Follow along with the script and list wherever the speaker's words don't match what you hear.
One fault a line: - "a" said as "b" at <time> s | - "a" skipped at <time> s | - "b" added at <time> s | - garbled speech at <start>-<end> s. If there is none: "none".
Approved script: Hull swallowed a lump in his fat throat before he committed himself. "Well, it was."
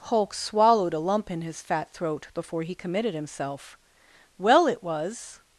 - "Hull" said as "Hulk" at 0.1 s